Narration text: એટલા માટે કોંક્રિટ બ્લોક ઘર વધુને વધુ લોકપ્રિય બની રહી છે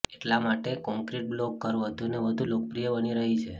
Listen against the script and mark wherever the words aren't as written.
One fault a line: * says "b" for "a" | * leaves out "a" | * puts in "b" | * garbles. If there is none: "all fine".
all fine